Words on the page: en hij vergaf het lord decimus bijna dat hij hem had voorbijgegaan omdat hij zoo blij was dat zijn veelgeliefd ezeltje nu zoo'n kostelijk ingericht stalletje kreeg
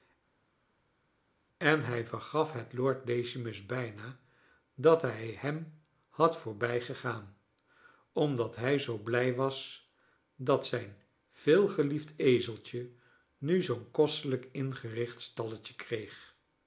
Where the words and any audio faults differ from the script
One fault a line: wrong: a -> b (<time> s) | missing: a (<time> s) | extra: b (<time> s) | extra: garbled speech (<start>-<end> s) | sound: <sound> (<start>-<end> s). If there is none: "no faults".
no faults